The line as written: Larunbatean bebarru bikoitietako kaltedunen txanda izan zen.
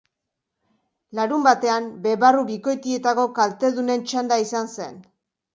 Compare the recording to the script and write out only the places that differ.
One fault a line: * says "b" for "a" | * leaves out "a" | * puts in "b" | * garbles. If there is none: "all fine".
all fine